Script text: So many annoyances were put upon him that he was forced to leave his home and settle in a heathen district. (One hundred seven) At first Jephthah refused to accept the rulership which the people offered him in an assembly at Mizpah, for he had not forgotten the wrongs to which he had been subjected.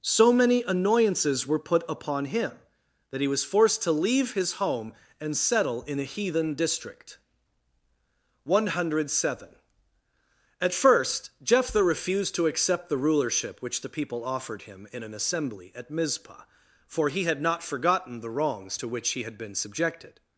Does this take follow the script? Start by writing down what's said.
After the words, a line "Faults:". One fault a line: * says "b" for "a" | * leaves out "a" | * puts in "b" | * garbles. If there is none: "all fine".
So many annoyances were put upon him that he was forced to leave his home and settle in a heathen district. (One hundred seven) At first Jephthah refused to accept the rulership which the people offered him in an assembly at Mizpah, for he had not forgotten the wrongs to which he had been subjected.
Faults:
all fine